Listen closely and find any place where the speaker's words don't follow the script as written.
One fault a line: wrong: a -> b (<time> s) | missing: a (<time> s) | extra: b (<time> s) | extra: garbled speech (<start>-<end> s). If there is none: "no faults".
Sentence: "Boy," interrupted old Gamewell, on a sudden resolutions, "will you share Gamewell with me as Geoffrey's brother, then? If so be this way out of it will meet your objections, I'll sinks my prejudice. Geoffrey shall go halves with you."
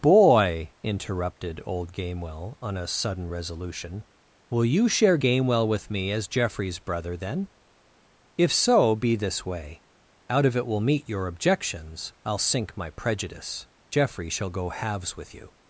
wrong: resolutions -> resolution (3.3 s)
wrong: sinks -> sink (12.4 s)